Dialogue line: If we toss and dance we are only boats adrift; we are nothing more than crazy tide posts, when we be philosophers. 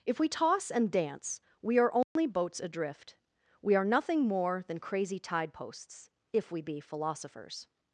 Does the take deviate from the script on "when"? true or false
true